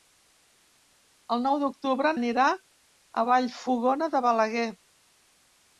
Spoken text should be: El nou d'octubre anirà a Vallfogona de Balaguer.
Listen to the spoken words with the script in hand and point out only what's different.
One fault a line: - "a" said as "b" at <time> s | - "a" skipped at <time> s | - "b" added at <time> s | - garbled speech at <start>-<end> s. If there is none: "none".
none